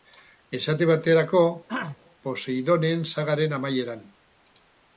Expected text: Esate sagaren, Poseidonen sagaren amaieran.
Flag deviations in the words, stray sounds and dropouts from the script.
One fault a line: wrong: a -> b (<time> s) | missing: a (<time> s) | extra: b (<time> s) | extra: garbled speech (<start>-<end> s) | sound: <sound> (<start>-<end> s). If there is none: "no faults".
wrong: sagaren -> baterako (0.9 s)
sound: throat clearing (1.7-2.0 s)